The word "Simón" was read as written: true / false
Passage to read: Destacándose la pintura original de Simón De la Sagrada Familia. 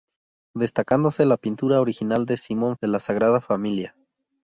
true